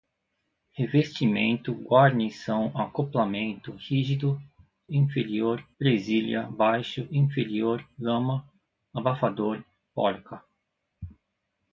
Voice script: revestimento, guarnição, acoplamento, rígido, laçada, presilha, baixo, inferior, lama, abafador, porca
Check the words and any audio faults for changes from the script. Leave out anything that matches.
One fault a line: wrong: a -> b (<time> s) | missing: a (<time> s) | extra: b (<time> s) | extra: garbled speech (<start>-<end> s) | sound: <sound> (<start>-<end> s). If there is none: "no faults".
wrong: laçada -> inferior (4.9 s)